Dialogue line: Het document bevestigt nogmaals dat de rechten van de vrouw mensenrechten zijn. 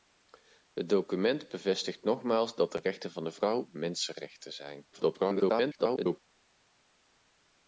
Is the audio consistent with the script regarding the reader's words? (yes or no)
no